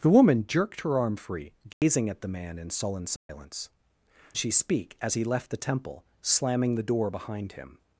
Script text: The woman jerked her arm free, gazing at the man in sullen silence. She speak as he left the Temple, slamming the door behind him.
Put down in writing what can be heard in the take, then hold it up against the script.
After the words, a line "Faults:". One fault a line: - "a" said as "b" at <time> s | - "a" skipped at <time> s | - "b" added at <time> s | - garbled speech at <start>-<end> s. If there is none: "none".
The woman jerked her arm free, gazing at the man in sullen silence. She speak as he left the Temple, slamming the door behind him.
Faults:
none